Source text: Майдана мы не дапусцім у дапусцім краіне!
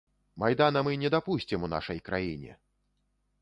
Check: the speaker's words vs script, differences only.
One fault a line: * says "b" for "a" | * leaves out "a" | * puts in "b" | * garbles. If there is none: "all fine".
* says "нашай" for "дапусцім"